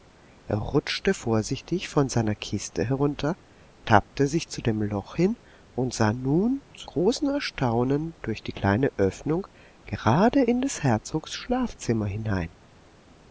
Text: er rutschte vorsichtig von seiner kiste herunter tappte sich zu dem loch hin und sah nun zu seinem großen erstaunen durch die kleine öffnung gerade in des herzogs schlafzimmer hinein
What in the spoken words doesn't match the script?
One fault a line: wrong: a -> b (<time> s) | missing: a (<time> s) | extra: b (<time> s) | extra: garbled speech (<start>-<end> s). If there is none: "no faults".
missing: seinem (6.9 s)